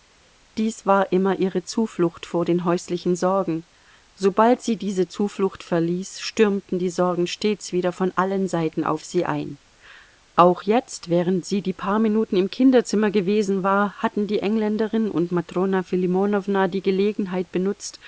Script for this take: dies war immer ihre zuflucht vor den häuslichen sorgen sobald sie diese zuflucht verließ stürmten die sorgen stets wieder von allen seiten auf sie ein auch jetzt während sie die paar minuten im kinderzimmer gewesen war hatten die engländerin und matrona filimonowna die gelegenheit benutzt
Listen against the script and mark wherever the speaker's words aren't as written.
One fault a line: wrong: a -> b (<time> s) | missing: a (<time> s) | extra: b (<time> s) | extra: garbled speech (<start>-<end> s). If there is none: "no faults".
no faults